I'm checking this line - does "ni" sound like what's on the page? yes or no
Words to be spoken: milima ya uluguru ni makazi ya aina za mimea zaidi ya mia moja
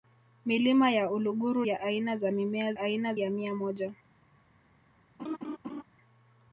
no